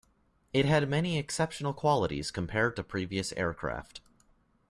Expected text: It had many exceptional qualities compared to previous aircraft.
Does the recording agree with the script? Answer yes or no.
yes